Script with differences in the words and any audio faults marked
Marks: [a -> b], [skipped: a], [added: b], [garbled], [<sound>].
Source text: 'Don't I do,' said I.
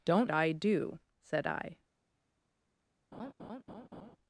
'Don't I do,' said I. [laugh]